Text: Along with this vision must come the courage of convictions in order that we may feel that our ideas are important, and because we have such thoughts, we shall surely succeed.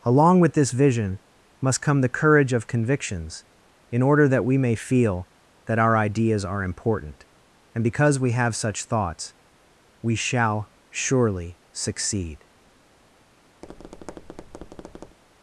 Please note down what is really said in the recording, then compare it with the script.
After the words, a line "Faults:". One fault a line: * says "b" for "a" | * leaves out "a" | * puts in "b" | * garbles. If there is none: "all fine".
Along with this vision must come the courage of convictions in order that we may feel that our ideas are important, and because we have such thoughts, we shall surely succeed.
Faults:
all fine